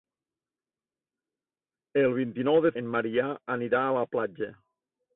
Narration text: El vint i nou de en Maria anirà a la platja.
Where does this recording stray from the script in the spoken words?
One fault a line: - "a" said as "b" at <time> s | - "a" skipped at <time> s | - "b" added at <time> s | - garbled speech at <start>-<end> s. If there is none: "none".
none